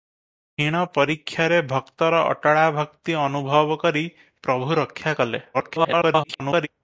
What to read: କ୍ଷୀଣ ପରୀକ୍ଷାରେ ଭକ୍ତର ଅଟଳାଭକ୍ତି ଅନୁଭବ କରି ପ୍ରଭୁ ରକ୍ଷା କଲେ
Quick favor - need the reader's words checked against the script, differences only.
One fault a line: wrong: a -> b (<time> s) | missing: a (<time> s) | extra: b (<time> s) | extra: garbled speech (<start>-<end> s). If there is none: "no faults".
extra: garbled speech (5.5-6.7 s)